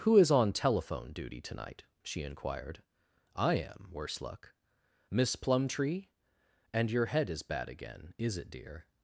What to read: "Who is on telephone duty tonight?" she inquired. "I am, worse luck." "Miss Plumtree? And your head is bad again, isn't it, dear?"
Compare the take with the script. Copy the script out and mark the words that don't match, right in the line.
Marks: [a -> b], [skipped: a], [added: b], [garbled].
"Who is on telephone duty tonight?" she inquired. "I am, worse luck." "Miss Plumtree? And your head is bad again, [isn't -> is] it, dear?"